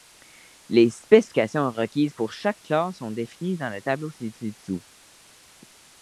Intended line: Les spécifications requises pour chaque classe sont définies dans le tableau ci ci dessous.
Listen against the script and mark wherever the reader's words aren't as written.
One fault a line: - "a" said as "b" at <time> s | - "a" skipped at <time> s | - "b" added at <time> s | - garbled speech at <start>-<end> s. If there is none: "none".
none